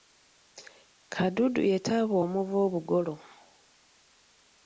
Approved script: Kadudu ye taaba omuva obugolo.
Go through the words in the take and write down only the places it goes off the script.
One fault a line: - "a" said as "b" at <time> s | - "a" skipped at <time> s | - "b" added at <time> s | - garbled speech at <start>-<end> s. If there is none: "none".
none